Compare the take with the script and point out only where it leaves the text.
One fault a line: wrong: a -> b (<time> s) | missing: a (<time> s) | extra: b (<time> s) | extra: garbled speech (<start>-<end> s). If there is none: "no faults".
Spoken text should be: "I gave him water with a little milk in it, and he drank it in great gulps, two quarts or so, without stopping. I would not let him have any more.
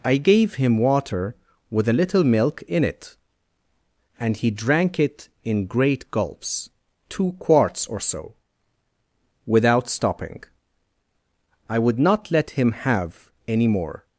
no faults